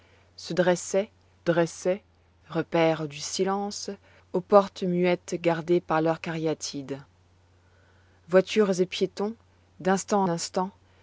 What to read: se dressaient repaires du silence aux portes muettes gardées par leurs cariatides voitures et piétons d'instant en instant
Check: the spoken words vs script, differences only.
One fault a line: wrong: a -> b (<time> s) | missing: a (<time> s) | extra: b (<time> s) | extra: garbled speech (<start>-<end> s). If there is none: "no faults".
extra: dressaient (1.4 s)
missing: en (10.2 s)